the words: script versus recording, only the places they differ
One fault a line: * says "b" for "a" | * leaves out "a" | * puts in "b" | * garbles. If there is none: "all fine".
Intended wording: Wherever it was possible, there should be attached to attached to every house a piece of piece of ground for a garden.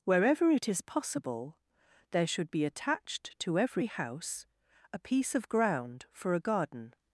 * says "is" for "was"
* leaves out "attached to"
* leaves out "piece of"